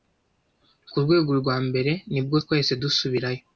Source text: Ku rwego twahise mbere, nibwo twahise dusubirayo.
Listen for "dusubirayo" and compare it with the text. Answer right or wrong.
right